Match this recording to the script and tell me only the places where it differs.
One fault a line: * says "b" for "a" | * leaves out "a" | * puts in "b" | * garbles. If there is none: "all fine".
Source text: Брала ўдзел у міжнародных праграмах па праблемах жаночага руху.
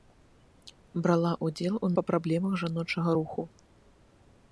* leaves out "міжнародных праграмах"